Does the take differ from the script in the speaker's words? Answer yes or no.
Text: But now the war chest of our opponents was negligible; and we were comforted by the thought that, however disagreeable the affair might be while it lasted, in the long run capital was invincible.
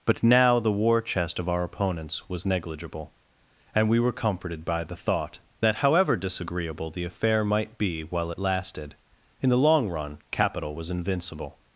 no